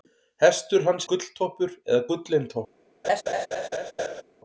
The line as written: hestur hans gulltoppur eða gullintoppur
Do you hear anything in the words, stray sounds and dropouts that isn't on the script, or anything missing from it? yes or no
yes